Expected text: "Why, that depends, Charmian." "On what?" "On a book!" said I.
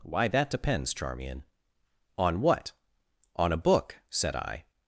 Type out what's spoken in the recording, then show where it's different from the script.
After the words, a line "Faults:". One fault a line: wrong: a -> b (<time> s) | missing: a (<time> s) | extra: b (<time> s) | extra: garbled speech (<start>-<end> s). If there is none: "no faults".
"Why, that depends, Charmian." "On what?" "On a book!" said I.
Faults:
no faults